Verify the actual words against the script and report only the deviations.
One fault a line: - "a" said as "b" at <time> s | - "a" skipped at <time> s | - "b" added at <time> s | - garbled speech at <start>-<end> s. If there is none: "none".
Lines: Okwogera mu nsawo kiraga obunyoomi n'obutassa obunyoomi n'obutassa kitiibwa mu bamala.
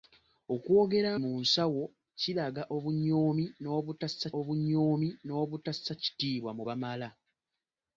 none